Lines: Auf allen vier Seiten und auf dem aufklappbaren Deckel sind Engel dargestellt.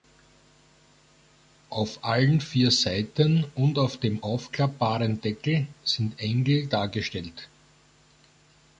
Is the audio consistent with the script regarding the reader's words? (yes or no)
yes